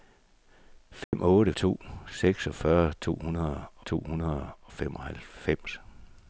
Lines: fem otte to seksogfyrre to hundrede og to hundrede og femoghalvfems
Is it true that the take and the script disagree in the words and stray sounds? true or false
true